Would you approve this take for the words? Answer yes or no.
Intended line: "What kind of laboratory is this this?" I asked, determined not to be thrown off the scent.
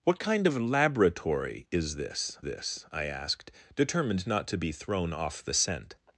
yes